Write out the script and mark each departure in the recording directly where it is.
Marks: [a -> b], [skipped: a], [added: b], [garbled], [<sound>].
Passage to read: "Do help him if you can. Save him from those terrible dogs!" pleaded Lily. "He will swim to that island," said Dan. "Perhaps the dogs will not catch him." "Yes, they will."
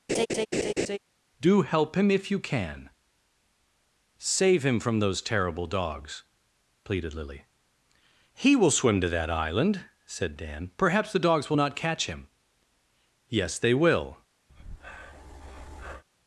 [laugh] "Do help him if you can. Save him from those terrible dogs!" pleaded Lily. "He will swim to that island," said Dan. "Perhaps the dogs will not catch him." "Yes, they will." [breath]